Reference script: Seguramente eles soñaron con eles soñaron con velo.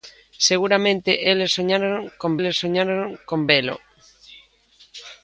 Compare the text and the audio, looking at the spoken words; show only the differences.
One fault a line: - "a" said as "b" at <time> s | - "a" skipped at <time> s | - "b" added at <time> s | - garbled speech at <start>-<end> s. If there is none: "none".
none